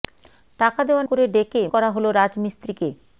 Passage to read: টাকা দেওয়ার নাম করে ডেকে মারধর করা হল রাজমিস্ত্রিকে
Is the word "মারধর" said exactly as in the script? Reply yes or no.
no